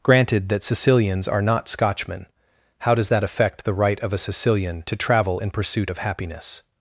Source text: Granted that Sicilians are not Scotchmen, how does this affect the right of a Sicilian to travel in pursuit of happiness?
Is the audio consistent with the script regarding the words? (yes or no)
no